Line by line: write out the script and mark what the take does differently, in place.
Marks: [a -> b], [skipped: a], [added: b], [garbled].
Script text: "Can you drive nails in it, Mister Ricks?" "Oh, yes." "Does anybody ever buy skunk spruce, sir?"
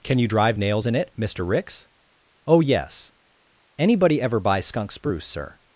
"Can you drive nails in it, Mister Ricks?" "Oh, yes." [skipped: "Does] anybody ever buy skunk spruce, sir?"